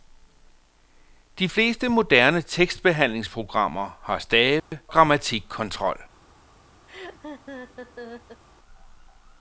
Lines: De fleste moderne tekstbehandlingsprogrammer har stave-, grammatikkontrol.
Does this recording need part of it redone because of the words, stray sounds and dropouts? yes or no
yes